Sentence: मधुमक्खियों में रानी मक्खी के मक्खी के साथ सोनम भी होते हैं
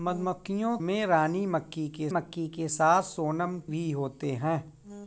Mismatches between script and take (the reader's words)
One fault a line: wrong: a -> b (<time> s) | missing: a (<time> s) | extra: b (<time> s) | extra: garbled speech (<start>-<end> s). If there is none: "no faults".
no faults